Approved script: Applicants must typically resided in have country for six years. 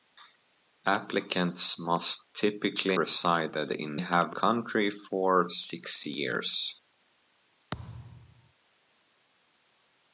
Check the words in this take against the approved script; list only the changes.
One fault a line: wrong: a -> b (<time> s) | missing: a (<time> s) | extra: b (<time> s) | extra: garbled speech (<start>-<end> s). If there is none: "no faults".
no faults